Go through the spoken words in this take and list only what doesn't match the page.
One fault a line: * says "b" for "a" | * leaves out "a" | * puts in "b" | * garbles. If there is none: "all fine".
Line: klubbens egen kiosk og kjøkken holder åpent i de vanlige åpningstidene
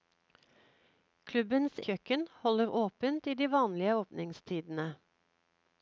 * leaves out "egen kiosk og"